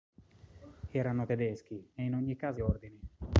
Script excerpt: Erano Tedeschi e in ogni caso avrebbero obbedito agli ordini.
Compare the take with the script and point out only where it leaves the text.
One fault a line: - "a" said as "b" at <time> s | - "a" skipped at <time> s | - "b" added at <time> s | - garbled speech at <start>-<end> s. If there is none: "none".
- "avrebbero obbedito agli" skipped at 2.6 s